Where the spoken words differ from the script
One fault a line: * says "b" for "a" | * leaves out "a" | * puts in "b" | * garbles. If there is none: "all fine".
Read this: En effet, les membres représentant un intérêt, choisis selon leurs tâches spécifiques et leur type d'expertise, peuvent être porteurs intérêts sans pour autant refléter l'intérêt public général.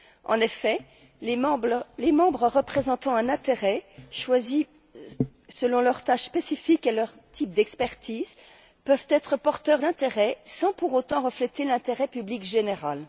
all fine